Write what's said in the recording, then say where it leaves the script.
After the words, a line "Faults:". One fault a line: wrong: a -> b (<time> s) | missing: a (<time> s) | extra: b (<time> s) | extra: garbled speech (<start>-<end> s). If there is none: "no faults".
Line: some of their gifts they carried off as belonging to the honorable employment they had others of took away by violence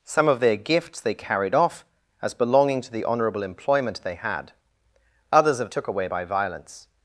some of their gifts they carried off as belonging to the honorable employment they had others of took away by violence
Faults:
no faults